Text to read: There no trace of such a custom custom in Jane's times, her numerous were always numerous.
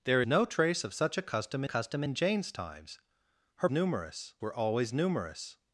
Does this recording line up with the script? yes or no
yes